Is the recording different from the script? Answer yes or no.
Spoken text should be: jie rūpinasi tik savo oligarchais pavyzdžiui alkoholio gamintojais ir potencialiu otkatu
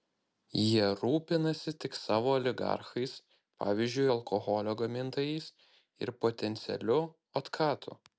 no